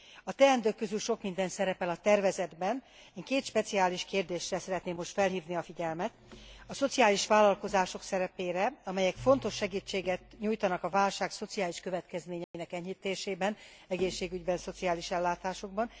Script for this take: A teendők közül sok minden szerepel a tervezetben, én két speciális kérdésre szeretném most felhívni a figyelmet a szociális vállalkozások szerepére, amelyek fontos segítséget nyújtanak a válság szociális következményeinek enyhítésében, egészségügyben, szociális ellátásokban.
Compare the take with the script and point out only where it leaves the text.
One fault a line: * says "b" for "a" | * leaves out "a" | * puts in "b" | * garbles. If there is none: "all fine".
all fine